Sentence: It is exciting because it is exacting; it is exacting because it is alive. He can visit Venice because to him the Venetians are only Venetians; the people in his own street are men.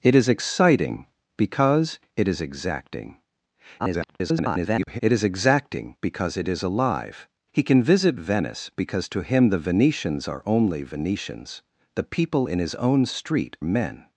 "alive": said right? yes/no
yes